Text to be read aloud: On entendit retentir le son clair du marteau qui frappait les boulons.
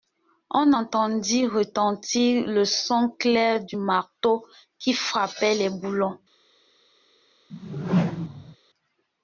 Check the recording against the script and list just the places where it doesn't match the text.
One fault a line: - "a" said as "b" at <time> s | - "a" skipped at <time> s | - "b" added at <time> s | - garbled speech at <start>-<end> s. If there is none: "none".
none